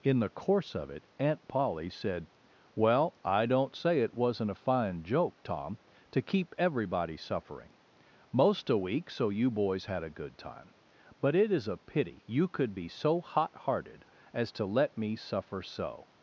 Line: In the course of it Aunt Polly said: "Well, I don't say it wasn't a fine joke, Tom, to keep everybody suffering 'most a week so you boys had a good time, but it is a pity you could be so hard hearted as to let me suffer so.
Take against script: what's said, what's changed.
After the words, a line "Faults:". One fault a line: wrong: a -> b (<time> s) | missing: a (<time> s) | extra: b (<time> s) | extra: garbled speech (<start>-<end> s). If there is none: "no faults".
In the course of it Aunt Polly said: "Well, I don't say it wasn't a fine joke, Tom, to keep everybody suffering 'most a week so you boys had a good time, but it is a pity you could be so hot hearted as to let me suffer so.
Faults:
wrong: hard -> hot (13.2 s)